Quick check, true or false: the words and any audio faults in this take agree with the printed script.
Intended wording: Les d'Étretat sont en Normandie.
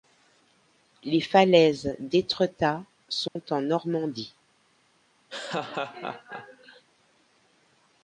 false